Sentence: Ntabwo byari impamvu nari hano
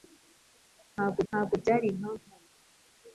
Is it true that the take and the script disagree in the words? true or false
true